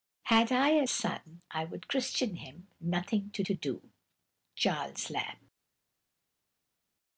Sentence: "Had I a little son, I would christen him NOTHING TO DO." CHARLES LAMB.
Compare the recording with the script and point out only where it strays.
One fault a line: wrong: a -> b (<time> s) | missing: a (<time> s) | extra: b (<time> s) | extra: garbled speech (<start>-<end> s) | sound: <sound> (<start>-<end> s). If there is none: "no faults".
missing: little (0.9 s)
extra: TO (3.4 s)